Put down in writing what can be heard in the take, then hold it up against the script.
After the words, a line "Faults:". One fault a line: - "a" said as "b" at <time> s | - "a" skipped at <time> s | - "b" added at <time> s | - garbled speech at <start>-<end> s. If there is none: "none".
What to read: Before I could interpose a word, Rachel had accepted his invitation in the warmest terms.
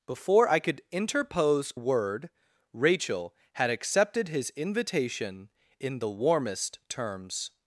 Before I could interpose word, Rachel had accepted his invitation in the warmest terms.
Faults:
- "a" skipped at 1.7 s